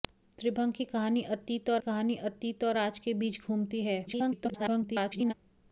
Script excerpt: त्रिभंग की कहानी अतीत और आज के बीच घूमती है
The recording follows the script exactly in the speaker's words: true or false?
false